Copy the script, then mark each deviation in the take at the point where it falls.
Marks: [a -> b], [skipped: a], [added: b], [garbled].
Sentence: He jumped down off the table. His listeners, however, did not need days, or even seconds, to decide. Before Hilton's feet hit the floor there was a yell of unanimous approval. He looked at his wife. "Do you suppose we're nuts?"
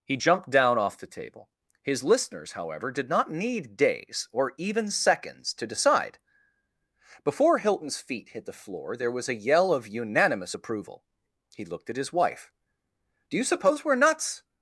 He jumped down off the table. His listeners, however, did not need days, or even seconds, to decide. Before Hilton's feet hit the floor there was a yell of unanimous approval. He looked at his wife. "Do you suppose we're nuts?"